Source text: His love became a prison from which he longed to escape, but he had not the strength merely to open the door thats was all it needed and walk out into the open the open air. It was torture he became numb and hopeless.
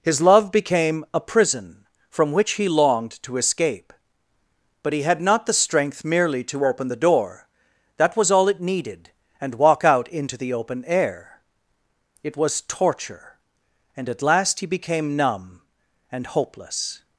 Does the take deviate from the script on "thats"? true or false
true